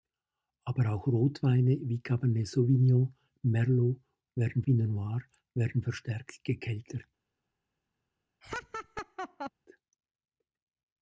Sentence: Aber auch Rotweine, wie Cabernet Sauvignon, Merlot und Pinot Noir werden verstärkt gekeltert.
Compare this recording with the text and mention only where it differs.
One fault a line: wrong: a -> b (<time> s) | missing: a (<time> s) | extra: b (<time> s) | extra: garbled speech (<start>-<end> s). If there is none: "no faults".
wrong: und -> werden (4.3 s)